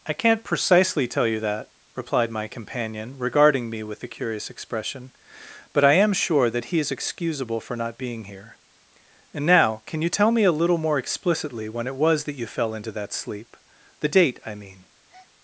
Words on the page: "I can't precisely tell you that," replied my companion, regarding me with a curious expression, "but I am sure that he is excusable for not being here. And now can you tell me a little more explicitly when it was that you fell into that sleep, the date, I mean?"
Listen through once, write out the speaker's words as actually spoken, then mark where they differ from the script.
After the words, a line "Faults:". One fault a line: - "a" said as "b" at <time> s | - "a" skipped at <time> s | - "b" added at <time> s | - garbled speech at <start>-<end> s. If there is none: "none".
"I can't precisely tell you that," replied my companion, regarding me with a curious expression, "but I am sure that he is excusable for not being here. And now can you tell me a little more explicitly when it was that you fell into that sleep, the date, I mean?"
Faults:
none